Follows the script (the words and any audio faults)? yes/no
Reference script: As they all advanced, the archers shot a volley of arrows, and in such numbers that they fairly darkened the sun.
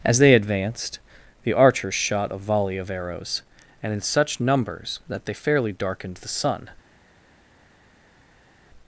no